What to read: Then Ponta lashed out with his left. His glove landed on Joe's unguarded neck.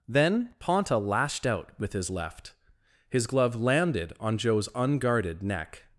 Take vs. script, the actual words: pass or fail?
pass